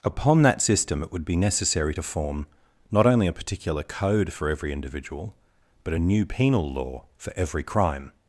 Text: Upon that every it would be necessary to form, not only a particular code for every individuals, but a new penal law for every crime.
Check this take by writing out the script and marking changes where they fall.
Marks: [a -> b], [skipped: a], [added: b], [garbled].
Upon that [every -> system] it would be necessary to form, not only a particular code for every [individuals, -> individual] but a new penal law for every crime.